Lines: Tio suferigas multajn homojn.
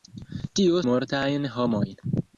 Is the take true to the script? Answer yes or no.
no